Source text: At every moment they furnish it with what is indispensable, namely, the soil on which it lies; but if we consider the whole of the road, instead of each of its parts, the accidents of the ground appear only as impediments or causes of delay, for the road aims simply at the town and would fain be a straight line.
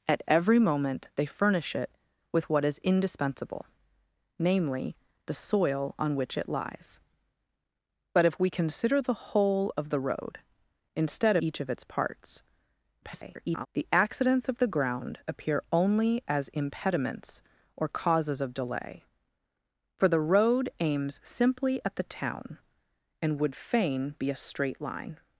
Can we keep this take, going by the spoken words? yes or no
no